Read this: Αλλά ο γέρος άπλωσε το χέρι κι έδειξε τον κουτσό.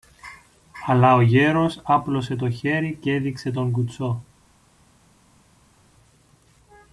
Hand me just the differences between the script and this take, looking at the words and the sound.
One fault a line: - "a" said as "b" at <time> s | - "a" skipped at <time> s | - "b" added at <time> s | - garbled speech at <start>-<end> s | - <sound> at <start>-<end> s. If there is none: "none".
none